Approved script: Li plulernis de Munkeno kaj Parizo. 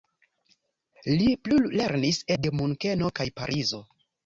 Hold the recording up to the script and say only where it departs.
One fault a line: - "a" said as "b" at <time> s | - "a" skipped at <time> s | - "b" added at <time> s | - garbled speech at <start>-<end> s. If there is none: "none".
none